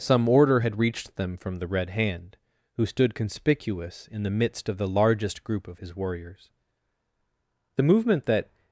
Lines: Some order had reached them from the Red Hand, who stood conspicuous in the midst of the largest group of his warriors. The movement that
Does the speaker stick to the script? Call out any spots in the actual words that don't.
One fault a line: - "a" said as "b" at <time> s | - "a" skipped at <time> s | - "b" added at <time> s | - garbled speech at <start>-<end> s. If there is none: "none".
none